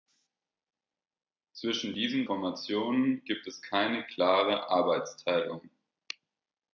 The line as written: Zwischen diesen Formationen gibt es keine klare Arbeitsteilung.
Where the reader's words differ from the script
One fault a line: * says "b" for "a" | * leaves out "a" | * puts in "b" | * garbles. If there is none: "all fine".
all fine